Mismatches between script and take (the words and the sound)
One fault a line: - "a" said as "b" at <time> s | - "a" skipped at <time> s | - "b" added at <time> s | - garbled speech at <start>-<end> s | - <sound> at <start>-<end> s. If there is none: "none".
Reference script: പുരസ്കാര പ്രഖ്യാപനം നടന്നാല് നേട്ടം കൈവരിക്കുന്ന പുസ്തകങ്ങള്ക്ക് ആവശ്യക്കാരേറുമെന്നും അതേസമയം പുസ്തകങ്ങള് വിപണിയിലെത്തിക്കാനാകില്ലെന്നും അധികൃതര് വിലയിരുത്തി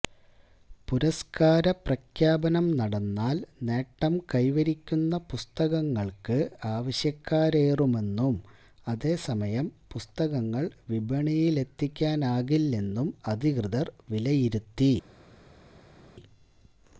none